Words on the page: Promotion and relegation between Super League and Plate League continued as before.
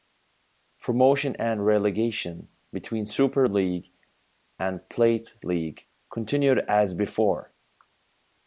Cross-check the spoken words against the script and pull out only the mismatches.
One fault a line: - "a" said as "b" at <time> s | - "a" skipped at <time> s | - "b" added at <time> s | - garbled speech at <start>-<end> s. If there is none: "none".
none